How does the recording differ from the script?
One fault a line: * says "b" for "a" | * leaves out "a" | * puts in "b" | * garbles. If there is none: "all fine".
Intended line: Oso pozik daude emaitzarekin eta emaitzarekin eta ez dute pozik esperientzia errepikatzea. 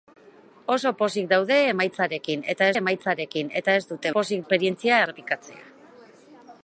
all fine